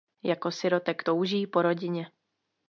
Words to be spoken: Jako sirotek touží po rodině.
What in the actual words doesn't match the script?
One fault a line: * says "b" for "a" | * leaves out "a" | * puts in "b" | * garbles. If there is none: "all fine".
all fine